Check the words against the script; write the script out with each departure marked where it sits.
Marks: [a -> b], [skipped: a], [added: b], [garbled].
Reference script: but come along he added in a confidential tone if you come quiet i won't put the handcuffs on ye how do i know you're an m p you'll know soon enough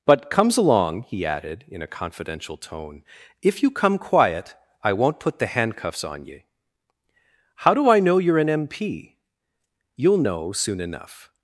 but [come -> comes] along he added in a confidential tone if you come quiet i won't put the handcuffs on ye how do i know you're an m p you'll know soon enough